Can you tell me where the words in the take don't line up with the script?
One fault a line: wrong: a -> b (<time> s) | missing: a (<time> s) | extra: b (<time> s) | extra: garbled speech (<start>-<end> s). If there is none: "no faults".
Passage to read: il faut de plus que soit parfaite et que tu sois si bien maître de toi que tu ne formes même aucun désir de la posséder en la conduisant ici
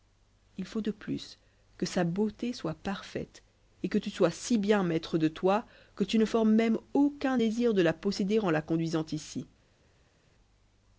extra: sa beauté (1.9 s)